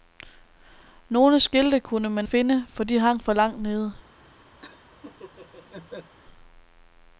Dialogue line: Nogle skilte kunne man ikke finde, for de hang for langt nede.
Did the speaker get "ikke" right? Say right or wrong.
wrong